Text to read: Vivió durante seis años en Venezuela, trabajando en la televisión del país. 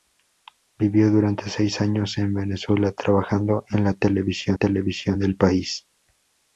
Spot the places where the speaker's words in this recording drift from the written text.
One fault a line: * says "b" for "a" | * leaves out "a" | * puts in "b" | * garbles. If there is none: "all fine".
* puts in "televisión"